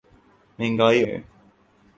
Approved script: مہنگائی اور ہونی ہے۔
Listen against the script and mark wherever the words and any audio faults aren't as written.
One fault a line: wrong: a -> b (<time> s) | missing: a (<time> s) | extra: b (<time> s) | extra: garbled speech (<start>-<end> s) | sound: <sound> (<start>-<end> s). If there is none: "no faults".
missing: اور ہونی (1.0 s)